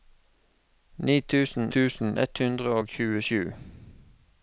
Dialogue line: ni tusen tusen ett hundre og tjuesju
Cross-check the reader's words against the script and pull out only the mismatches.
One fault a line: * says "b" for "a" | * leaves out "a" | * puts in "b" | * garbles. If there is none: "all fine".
all fine